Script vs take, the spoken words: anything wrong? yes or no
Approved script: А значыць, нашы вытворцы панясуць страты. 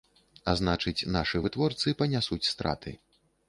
no